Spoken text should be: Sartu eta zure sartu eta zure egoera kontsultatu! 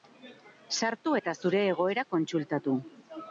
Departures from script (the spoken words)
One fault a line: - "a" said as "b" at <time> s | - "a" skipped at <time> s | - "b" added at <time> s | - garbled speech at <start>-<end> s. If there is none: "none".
- "sartu eta zure" skipped at 1.6 s